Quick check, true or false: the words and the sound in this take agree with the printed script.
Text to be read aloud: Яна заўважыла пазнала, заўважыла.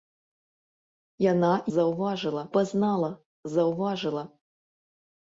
true